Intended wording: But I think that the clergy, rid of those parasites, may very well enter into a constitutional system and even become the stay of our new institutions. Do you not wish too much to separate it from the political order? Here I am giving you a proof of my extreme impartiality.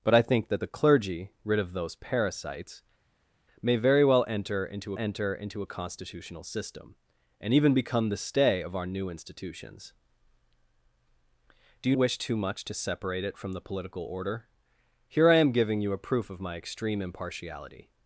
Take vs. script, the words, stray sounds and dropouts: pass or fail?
fail